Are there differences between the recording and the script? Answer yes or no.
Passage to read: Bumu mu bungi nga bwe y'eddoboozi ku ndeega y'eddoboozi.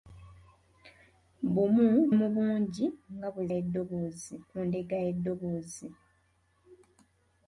no